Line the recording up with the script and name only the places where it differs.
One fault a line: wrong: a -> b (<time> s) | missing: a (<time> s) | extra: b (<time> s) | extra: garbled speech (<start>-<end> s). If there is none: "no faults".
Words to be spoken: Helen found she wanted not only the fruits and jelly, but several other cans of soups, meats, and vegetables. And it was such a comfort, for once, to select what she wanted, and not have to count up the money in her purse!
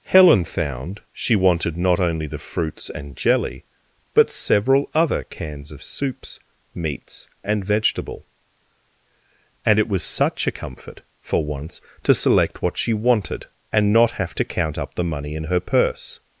wrong: vegetables -> vegetable (7.6 s)